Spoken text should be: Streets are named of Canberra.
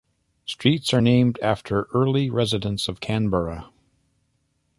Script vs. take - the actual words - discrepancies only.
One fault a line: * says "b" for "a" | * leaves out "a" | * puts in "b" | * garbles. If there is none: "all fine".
* puts in "after early residents"